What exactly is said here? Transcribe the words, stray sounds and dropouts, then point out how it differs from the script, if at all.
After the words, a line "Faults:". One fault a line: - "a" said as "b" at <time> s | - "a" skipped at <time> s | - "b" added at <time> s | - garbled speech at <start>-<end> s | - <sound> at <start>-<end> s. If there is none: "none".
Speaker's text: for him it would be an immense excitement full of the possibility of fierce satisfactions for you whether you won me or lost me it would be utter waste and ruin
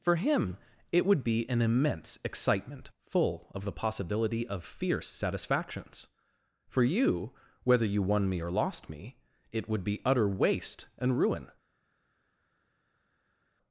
for him it would be an immense excitement full of the possibility of fierce satisfactions for you whether you won me or lost me it would be utter waste and ruin
Faults:
none